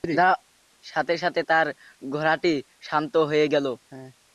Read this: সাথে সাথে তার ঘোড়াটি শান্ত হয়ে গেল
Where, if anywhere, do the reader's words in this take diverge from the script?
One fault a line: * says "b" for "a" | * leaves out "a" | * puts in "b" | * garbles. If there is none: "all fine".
all fine